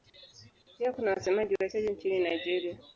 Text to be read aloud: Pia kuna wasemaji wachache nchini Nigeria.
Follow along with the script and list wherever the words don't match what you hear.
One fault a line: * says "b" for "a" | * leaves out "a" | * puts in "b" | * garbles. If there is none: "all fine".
all fine